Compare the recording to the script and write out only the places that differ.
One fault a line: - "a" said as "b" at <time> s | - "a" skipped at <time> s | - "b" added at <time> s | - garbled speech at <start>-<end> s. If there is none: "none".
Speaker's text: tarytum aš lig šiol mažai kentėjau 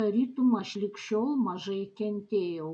none